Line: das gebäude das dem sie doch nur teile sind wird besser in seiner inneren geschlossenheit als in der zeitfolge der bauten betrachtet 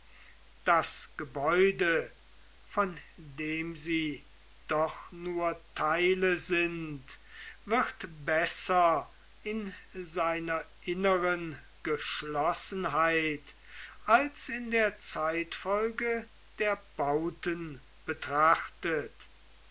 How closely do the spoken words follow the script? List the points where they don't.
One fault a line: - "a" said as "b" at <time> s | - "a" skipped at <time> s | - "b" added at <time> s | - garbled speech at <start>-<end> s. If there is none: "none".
- "das" said as "von" at 2.6 s